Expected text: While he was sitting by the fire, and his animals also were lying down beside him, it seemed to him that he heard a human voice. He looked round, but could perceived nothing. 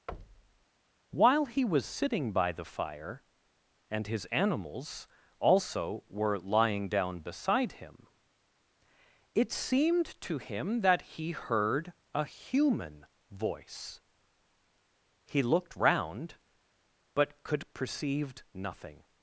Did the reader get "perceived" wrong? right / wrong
wrong